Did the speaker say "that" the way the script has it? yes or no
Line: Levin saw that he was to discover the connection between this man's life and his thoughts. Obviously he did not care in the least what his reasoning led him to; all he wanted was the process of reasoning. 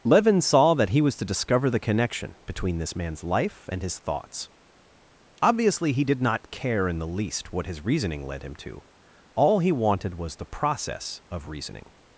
yes